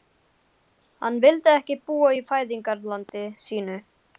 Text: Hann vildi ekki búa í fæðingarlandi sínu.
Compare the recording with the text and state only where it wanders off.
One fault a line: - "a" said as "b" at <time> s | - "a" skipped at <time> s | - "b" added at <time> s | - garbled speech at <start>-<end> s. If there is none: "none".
none